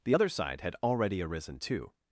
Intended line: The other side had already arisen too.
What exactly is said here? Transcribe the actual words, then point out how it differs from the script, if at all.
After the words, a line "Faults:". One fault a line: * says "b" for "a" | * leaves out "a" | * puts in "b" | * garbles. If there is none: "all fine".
The other side had already arisen too.
Faults:
all fine